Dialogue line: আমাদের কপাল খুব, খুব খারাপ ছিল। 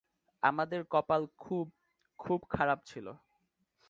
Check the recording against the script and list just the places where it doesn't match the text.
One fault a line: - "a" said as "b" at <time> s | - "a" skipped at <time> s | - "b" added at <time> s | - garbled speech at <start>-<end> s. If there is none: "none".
none